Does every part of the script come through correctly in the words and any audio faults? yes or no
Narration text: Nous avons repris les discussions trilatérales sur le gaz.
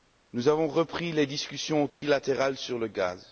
no